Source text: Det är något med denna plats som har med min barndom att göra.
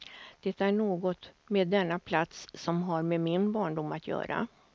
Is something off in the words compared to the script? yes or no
no